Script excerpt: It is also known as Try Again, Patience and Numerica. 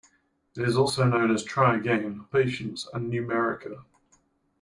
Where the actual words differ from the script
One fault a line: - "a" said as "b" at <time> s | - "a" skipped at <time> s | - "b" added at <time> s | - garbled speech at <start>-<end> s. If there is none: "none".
none